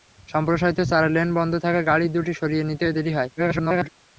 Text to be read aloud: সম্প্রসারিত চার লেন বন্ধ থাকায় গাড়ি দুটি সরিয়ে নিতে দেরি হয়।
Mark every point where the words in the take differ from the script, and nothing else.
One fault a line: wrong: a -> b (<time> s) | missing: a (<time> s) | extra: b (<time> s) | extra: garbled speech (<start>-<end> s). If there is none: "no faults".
extra: garbled speech (3.4-3.9 s)